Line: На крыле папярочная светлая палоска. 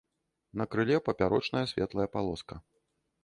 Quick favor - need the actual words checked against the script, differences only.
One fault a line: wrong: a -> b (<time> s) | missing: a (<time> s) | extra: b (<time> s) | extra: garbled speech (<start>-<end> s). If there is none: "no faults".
no faults